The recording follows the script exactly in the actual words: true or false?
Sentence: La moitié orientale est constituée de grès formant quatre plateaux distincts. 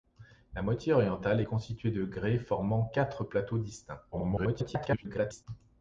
false